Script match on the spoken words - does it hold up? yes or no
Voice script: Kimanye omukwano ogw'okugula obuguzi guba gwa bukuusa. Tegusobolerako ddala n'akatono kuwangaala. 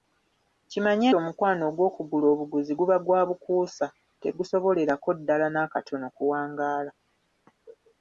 yes